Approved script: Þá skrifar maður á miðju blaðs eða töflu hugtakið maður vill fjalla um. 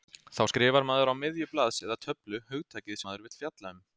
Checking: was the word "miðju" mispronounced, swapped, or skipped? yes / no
no